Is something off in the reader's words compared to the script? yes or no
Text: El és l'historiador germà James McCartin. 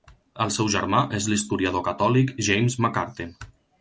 yes